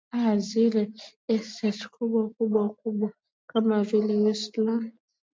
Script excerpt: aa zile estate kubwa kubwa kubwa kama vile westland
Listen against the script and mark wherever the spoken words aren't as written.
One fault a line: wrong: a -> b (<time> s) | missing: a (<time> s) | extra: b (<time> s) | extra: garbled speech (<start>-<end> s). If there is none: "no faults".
no faults